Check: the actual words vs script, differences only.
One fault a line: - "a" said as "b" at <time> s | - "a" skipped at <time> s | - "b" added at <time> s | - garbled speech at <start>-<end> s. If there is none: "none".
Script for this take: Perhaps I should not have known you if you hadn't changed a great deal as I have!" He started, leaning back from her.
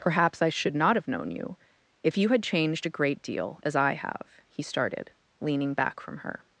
- "hadn't" said as "had" at 2.3 s